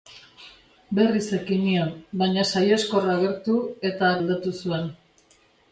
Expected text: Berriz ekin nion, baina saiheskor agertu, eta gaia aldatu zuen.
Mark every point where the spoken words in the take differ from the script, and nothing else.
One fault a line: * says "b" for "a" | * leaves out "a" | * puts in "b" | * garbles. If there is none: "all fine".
* leaves out "gaia"